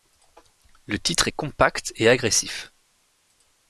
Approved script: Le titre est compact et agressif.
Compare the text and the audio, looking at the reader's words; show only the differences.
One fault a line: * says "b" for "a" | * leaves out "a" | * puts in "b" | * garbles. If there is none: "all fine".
all fine